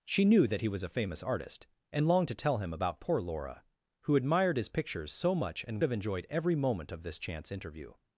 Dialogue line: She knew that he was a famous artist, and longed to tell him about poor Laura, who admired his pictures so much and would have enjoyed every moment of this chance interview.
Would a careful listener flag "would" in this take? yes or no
yes